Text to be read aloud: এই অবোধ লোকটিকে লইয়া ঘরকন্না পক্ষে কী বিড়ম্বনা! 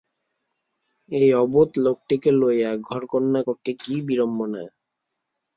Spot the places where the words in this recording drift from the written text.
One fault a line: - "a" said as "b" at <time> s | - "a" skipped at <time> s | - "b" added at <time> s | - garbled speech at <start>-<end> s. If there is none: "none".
none